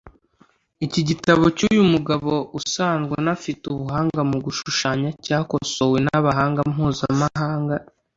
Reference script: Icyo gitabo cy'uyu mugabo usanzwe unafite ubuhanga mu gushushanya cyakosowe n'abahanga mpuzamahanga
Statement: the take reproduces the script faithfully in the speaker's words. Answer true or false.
false